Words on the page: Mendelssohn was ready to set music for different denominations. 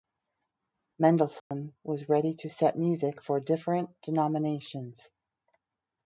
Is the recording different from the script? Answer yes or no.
no